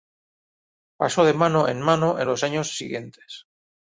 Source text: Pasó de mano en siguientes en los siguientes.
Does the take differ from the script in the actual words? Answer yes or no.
yes